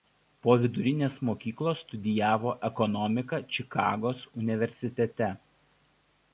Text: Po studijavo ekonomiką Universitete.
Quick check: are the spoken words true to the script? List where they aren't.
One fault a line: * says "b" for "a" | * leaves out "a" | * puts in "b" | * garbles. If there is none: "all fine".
* puts in "vidurinės mokyklos"
* puts in "Čikagos"